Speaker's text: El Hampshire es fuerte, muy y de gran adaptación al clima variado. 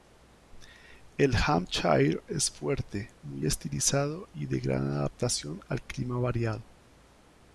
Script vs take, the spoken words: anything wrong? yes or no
yes